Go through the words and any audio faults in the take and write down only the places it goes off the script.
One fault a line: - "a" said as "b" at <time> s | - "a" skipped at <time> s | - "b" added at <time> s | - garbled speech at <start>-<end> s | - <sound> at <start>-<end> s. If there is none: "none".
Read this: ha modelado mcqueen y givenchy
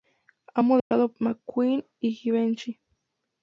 - dropout at 0.8-0.9 s